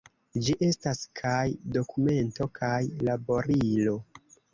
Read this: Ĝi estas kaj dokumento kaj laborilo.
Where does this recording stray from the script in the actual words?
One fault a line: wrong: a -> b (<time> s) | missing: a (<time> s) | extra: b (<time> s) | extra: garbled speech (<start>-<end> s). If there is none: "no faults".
no faults